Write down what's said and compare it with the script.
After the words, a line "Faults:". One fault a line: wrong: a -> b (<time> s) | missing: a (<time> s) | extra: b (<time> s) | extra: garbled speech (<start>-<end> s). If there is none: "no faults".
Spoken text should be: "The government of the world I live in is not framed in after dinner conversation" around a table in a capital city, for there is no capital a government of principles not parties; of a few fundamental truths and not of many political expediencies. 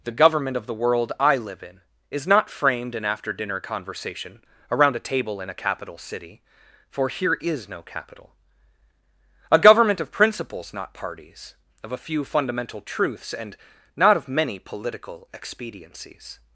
"The government of the world I live in is not framed in after dinner conversation" around a table in a capital city, for here is no capital a government of principles not parties; of a few fundamental truths and not of many political expediencies.
Faults:
wrong: there -> here (7.1 s)